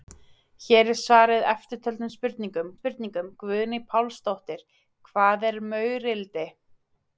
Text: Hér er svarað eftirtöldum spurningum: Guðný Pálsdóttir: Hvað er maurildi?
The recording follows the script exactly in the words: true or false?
false